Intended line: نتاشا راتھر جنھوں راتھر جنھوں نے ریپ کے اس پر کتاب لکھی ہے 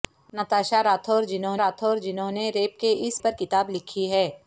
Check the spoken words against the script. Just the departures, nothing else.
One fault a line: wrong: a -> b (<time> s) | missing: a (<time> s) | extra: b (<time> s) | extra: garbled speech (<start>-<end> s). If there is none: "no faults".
no faults